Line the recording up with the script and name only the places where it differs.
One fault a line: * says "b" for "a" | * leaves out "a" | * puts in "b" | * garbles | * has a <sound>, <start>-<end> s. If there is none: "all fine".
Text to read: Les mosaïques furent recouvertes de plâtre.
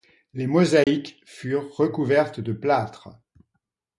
* has a dropout, 0.8-0.9 s